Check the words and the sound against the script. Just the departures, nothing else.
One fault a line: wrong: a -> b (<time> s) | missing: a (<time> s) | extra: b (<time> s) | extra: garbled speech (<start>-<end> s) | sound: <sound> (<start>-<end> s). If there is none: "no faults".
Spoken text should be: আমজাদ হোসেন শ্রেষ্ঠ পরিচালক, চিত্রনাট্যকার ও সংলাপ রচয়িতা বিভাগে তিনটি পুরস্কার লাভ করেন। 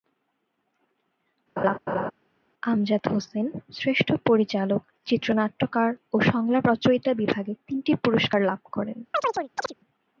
sound: laugh (1.6-2.1 s)
sound: chirp (9.1-9.7 s)